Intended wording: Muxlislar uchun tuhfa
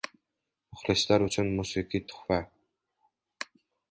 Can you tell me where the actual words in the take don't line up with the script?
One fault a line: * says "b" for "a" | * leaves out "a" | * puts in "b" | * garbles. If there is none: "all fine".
* puts in "musiqiy"